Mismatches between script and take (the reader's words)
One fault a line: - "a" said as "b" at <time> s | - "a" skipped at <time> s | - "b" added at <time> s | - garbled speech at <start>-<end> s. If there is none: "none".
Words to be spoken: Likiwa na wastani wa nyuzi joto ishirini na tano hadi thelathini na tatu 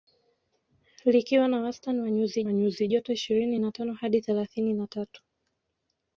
- "wa nyuzi" added at 2.4 s